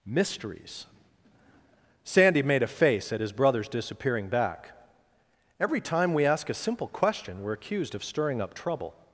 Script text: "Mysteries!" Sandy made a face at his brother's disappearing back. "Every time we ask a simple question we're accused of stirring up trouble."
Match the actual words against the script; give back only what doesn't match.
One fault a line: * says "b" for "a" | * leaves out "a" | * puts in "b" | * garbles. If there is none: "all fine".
all fine